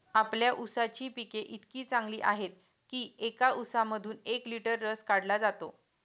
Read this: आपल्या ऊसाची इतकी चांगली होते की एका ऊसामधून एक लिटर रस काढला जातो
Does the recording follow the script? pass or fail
fail